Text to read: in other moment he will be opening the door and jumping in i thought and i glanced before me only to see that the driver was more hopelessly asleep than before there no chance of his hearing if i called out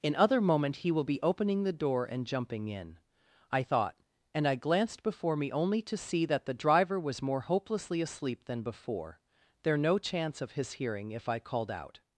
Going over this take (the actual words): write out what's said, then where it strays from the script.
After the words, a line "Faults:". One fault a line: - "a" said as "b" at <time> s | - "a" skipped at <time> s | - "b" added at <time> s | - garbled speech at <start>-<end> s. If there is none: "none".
in other moment he will be opening the door and jumping in i thought and i glanced before me only to see that the driver was more hopelessly asleep than before there no chance of his hearing if i called out
Faults:
none